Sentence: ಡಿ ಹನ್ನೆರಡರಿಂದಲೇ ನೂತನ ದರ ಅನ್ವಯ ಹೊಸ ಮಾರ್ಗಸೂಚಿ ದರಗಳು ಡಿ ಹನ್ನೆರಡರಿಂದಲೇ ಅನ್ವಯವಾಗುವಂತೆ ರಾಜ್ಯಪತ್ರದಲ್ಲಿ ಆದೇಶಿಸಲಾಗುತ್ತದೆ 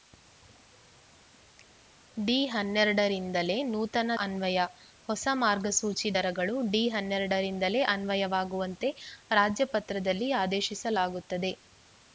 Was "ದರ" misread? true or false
true